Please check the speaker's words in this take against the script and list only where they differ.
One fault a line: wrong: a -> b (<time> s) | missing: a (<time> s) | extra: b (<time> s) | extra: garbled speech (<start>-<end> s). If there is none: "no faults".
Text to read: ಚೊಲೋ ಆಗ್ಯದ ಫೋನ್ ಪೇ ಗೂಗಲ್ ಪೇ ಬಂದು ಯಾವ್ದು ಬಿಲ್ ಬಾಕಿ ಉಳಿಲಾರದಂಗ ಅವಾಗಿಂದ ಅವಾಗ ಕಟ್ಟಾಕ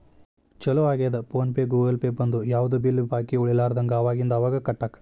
no faults